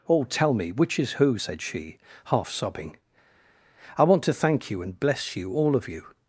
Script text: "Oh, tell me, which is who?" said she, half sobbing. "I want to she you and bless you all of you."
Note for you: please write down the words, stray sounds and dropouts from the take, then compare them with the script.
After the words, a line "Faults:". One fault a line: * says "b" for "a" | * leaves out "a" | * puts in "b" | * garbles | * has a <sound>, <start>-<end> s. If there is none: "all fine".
"Oh, tell me, which is who?" said she, half sobbing. "I want to thank you and bless you all of you."
Faults:
* says "thank" for "she"